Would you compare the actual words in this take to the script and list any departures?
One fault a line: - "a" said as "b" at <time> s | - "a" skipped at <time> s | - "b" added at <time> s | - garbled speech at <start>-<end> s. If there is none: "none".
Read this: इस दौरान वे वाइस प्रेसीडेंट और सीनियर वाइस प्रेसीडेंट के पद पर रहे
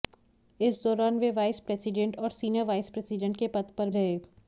none